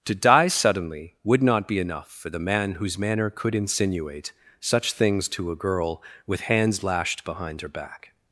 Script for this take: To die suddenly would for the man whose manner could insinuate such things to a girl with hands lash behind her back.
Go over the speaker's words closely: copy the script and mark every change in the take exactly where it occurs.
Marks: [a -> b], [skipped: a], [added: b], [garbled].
To die suddenly would [added: not be enough] for the man whose manner could insinuate such things to a girl with hands [lash -> lashed] behind her back.